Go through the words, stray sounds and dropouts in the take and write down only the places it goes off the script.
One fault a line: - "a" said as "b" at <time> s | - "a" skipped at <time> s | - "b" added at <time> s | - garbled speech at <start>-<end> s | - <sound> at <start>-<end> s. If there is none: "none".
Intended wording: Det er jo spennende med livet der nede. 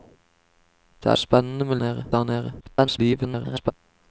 - "jo" skipped at 1.1 s
- "livet" said as "nede" at 1.8 s
- garbled speech at 2.6-3.7 s